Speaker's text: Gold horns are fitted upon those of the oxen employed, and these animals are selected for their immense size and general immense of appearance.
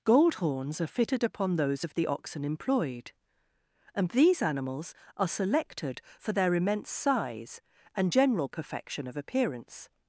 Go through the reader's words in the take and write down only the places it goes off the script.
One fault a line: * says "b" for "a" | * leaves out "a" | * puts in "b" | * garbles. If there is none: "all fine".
* says "perfection" for "immense"